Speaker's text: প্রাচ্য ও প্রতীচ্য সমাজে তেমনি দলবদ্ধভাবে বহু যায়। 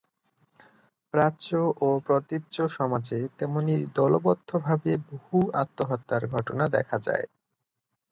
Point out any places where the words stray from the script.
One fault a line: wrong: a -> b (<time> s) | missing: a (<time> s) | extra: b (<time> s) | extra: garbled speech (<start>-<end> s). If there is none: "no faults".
extra: আত্মহত্যার ঘটনা দেখা (5.6 s)